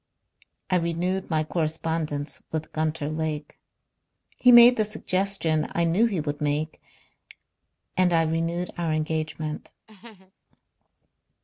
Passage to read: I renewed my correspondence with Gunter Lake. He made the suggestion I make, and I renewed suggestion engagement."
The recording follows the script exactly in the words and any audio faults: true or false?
false